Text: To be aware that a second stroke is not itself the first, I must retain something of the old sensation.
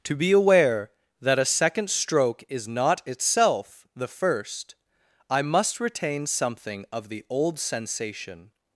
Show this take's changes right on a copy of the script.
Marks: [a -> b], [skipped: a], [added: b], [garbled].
To be aware that a second stroke is not itself the first, I must retain something of the old sensation.